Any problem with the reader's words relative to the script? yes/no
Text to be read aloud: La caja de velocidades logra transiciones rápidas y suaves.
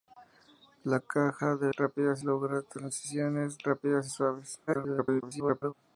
yes